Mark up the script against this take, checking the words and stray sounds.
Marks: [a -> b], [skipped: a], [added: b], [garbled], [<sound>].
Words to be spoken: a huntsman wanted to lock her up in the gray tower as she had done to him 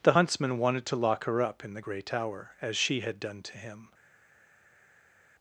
[a -> the] huntsman wanted to lock her up in the gray tower as she had done to him